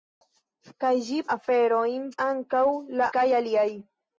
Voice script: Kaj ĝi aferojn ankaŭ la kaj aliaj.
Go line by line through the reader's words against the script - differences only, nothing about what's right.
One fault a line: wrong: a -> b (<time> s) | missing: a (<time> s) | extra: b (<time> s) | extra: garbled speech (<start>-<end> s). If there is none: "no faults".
no faults